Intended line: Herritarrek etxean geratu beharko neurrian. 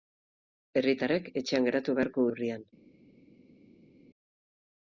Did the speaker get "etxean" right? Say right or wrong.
right